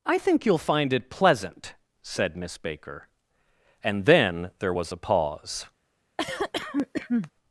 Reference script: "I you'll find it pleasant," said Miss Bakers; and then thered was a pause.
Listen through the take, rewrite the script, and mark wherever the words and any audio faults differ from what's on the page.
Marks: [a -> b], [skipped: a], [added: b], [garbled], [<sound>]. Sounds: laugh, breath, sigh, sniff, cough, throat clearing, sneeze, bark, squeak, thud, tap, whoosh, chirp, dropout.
"I [added: think] you'll find it pleasant," said Miss [Bakers; -> Baker] and then [thered -> there] was a pause. [cough]